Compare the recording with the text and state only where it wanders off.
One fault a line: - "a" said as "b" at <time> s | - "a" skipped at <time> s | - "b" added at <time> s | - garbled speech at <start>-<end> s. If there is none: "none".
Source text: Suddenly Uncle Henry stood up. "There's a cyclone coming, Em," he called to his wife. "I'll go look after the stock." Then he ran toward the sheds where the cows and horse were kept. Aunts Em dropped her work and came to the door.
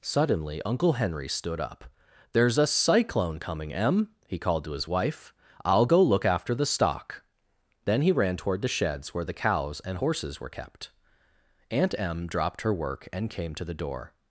- "horse" said as "horses" at 10.0 s
- "Aunts" said as "Aunt" at 11.7 s